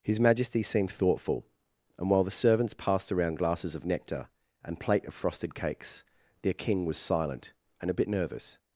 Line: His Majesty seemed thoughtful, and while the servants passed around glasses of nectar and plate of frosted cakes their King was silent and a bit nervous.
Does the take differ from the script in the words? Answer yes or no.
no